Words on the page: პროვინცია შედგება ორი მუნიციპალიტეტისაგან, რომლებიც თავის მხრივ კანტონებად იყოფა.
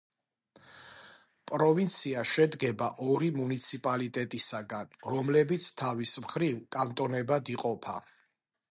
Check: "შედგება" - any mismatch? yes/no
no